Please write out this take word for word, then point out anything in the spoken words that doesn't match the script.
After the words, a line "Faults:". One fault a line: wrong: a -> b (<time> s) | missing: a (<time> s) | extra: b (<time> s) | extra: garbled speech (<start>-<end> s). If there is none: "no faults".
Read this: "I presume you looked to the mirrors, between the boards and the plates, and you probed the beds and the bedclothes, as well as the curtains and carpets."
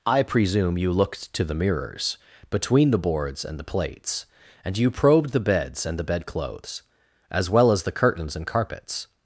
"I presume you looked to the mirrors, between the boards and the plates, and you probed the beds and the bedclothes, as well as the curtains and carpets."
Faults:
no faults